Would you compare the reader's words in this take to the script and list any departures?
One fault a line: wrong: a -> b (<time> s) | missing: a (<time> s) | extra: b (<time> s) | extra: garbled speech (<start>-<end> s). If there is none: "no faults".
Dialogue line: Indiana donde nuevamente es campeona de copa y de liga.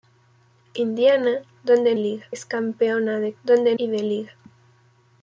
wrong: nuevamente -> liga (2.0 s)
wrong: copa -> donde (3.4 s)